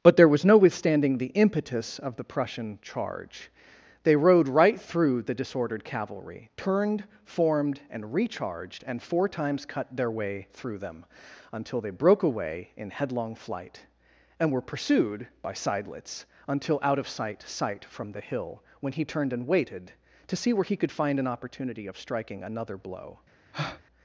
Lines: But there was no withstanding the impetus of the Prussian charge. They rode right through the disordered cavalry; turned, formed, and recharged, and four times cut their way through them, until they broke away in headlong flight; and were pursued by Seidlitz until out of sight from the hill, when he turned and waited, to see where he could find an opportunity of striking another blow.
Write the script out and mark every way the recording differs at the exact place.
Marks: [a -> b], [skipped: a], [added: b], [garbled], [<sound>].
But there was no withstanding the impetus of the Prussian charge. They rode right through the disordered cavalry; turned, formed, and recharged, and four times cut their way through them, until they broke away in headlong flight; and were pursued by Seidlitz until out of sight [added: sight] from the hill, when he turned and waited, to see where he could find an opportunity of striking another blow. [breath]